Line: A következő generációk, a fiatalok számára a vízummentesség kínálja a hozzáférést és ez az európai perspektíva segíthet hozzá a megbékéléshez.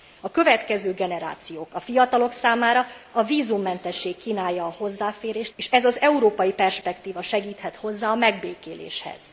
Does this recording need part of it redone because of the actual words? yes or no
no